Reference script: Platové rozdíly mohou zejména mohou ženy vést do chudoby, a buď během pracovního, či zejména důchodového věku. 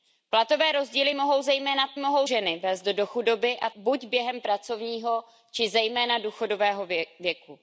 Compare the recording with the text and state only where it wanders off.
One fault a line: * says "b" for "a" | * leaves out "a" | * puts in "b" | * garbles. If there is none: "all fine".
all fine